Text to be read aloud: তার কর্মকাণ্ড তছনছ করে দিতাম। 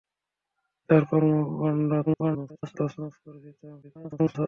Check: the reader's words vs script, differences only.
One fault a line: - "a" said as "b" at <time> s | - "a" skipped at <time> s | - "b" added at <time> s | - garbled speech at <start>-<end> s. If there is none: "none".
- garbled speech at 2.1-2.8 s
- garbled speech at 3.8-4.5 s